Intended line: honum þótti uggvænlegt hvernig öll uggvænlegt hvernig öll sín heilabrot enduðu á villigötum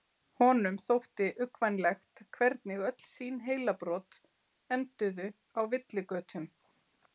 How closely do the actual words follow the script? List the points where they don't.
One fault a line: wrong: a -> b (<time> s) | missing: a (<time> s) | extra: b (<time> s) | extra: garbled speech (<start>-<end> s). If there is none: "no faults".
missing: uggvænlegt hvernig öll (3.0 s)